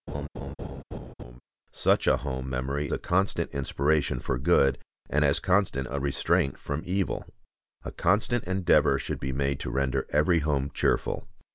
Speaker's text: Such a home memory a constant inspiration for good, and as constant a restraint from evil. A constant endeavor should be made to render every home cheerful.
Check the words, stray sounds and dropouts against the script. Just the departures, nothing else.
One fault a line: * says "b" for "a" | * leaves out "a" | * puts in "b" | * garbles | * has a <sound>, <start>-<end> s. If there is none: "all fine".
* has a laugh, 0.1-1.4 s